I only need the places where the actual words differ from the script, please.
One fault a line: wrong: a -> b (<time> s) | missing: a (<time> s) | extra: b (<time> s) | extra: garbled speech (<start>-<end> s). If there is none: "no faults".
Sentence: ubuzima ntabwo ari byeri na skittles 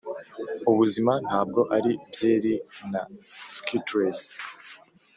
no faults